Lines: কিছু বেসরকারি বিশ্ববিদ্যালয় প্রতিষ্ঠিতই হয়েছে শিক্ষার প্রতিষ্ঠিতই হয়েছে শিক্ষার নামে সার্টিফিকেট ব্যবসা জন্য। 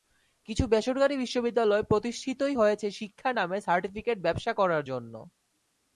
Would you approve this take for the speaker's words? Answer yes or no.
no